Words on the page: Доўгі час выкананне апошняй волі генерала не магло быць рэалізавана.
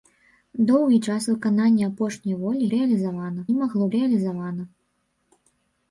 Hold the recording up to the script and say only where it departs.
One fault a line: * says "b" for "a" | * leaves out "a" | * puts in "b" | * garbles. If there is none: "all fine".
* says "рэалізавана" for "генерала"
* leaves out "быць"